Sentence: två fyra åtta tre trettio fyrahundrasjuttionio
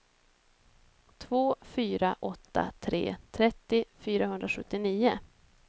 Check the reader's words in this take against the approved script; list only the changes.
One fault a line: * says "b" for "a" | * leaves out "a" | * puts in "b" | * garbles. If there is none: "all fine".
all fine